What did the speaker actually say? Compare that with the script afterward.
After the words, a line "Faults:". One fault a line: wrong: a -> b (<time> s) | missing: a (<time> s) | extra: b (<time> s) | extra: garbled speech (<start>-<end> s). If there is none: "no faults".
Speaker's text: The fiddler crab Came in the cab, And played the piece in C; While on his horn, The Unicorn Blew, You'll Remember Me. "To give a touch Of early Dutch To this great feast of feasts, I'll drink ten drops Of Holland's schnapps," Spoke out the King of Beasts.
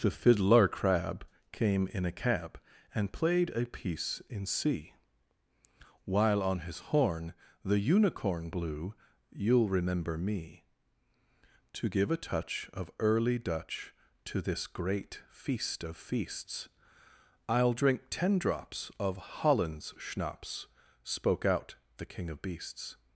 The fiddler crab Came in a cab, And played a piece in C; While on his horn, The Unicorn Blew, You'll Remember Me. "To give a touch Of early Dutch To this great feast of feasts, I'll drink ten drops Of Holland's schnapps," Spoke out the King of Beasts.
Faults:
wrong: the -> a (2.0 s)
wrong: the -> a (3.5 s)